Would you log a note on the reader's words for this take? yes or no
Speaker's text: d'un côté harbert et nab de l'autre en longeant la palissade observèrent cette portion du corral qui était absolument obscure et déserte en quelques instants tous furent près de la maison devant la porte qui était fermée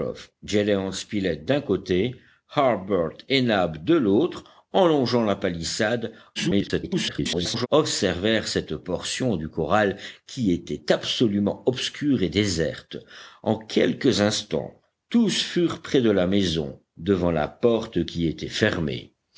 yes